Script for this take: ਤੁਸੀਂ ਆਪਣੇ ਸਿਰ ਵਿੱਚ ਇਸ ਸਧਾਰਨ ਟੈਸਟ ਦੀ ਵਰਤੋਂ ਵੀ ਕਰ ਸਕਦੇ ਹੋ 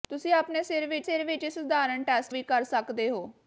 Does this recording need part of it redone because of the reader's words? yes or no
yes